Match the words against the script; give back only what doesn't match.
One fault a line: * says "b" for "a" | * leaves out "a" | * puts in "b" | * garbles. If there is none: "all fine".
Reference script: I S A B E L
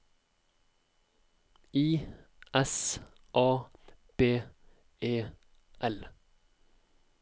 all fine